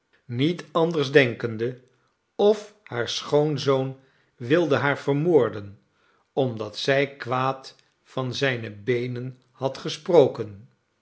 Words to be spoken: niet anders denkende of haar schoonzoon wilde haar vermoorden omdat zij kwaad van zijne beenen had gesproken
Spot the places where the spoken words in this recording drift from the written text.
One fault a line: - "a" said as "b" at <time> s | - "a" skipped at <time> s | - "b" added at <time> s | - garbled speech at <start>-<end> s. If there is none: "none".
none